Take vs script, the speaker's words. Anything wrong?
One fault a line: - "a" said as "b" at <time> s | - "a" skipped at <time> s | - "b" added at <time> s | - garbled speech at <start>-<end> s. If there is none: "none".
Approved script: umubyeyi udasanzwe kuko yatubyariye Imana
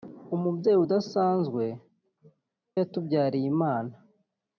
- "kuko" skipped at 1.6 s